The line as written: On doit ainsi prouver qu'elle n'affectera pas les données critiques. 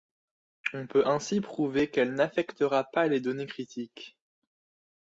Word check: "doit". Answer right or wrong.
wrong